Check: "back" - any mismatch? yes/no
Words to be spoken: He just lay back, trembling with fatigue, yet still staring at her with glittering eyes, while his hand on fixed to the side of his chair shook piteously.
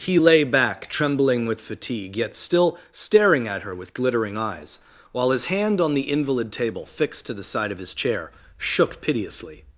no